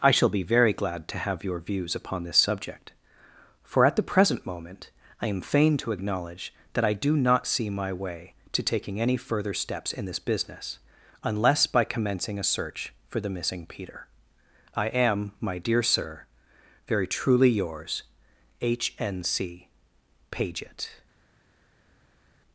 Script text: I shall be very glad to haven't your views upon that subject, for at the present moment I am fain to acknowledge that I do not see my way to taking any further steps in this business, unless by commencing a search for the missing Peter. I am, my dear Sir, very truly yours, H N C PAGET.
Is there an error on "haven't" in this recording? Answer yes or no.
yes